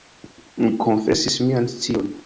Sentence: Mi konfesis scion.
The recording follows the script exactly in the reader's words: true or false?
false